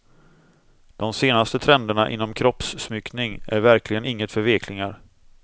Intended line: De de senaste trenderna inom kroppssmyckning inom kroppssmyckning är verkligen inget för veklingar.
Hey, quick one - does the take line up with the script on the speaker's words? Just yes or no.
no